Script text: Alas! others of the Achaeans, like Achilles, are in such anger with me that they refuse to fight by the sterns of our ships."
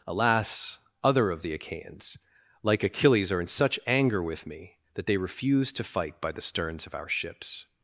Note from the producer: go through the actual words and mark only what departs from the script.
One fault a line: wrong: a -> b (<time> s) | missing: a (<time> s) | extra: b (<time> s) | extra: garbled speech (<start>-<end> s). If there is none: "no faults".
wrong: others -> other (1.0 s)